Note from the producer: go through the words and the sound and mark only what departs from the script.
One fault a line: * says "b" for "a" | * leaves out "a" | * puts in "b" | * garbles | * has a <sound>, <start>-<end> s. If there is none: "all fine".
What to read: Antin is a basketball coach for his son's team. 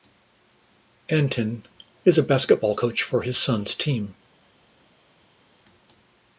all fine